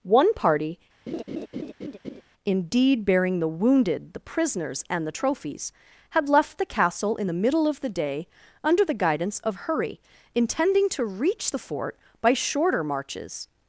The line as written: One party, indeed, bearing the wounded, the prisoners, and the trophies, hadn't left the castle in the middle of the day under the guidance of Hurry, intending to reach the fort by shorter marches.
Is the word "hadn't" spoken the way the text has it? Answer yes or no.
no